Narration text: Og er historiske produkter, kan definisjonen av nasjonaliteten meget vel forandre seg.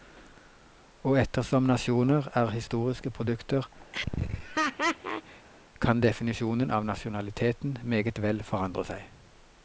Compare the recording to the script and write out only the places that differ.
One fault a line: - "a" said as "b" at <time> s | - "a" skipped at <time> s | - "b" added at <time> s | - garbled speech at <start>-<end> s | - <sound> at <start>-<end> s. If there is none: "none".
- "ettersom nasjoner" added at 1.2 s
- laugh at 3.9-5.5 s